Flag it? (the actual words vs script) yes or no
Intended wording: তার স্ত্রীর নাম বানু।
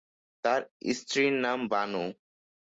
no